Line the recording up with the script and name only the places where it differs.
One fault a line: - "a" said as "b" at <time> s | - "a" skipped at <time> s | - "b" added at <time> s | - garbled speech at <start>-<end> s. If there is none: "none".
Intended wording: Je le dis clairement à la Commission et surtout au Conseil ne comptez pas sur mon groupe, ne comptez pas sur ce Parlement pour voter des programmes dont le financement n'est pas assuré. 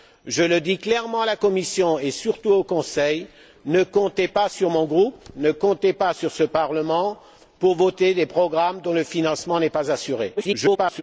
- garbled speech at 10.4-11.0 s